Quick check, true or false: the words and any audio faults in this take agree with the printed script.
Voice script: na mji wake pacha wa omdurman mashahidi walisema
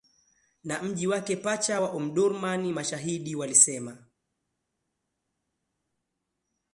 true